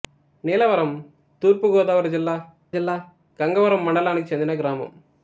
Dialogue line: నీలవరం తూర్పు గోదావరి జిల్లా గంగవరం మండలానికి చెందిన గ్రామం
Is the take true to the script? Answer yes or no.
no